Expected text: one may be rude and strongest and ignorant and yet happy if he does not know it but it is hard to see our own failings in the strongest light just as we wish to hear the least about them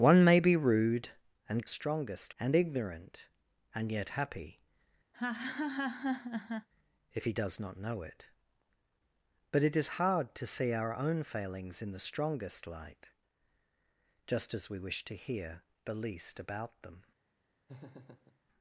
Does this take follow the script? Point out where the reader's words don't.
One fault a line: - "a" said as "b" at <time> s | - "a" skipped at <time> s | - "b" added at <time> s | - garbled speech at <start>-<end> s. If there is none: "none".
none